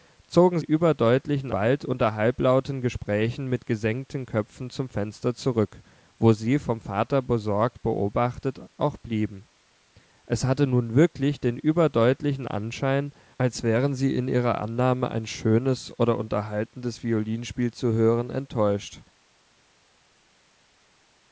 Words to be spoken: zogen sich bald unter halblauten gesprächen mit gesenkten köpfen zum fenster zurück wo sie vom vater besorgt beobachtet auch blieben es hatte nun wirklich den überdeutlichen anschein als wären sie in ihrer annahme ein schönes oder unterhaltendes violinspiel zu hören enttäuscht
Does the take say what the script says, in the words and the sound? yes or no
no